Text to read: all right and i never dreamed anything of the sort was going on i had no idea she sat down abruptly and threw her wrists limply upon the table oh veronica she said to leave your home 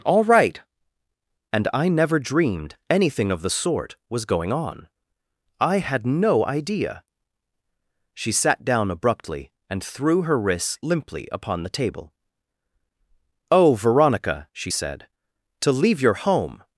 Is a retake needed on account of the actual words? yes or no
no